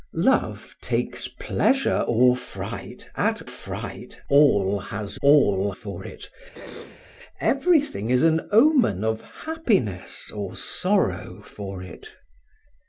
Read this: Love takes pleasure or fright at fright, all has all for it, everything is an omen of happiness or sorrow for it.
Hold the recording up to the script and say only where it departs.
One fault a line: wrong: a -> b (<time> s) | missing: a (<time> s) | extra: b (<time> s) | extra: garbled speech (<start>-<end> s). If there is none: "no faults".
no faults